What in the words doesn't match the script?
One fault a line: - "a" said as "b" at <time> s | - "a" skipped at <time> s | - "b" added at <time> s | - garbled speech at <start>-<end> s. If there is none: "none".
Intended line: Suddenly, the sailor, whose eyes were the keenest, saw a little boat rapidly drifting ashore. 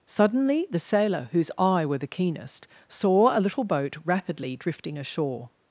- "eyes" said as "eye" at 1.6 s